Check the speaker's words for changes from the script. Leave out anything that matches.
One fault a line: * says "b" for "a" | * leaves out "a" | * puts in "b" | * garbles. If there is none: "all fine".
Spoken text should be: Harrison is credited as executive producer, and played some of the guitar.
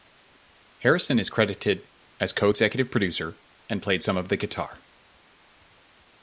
* puts in "co"